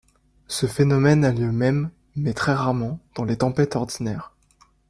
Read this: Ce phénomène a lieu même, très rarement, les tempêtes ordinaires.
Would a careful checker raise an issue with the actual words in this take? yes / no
yes